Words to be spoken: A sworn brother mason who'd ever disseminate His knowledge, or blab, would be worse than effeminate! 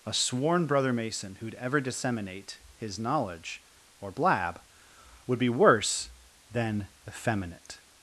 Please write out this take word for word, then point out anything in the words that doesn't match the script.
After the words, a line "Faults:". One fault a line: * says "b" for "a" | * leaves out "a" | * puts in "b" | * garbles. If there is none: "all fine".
A sworn brother mason who'd ever disseminate His knowledge, or blab, would be worse than effeminate!
Faults:
all fine